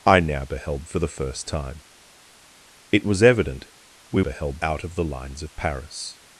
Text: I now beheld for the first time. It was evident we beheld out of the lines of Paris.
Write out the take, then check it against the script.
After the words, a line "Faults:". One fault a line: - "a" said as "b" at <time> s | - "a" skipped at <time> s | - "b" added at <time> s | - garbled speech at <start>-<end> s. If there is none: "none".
I now beheld for the first time. It was evident we beheld out of the lines of Paris.
Faults:
none